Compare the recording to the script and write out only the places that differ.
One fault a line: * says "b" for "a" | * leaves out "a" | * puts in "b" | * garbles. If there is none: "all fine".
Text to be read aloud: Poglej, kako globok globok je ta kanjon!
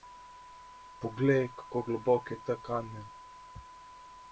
* leaves out "globok"